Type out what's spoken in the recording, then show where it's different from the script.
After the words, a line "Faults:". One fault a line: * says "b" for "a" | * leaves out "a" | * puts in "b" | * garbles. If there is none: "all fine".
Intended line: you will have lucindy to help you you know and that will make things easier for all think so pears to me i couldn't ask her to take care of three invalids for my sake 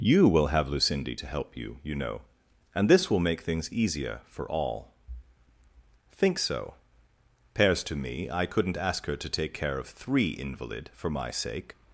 you will have lucindy to help you you know and this will make things easier for all think so pears to me i couldn't ask her to take care of three invalid for my sake
Faults:
* says "this" for "that"
* says "invalid" for "invalids"